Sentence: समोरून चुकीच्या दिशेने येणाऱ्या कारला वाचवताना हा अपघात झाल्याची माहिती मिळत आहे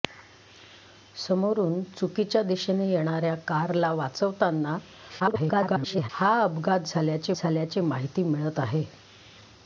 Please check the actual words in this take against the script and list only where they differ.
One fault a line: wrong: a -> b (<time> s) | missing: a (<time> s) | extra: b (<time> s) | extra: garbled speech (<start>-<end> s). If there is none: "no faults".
extra: garbled speech (5.2-6.1 s)
extra: झाल्याची (7.4 s)